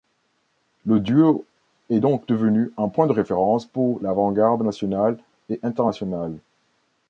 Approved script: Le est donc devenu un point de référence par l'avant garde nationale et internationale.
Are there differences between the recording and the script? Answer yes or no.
yes